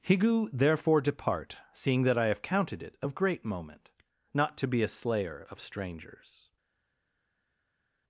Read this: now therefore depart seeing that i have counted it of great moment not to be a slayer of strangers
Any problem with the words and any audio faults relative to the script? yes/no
yes